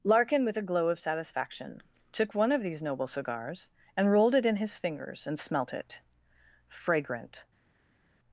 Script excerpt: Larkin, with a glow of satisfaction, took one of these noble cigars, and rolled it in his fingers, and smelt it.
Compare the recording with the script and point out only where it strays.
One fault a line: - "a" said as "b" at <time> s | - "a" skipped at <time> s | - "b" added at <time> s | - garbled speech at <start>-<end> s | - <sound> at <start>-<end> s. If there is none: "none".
- "Fragrant" added at 6.7 s